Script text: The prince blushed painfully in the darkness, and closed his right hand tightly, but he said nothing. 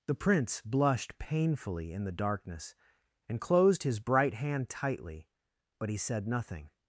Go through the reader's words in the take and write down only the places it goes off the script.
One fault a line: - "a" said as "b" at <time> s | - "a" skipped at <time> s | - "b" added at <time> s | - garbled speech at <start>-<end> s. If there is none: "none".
- "right" said as "bright" at 4.0 s